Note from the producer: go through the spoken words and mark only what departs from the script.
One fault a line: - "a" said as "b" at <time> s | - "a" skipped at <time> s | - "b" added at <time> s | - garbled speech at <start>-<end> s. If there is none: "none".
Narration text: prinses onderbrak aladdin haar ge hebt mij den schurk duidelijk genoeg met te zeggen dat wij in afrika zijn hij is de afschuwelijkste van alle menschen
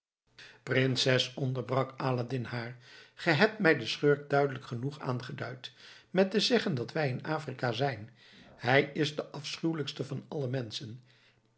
- "aangeduid" added at 5.0 s